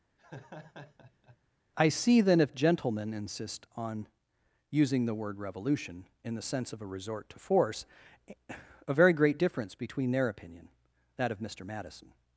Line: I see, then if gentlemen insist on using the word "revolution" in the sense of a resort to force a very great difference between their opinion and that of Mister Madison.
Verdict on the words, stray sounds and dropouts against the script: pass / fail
fail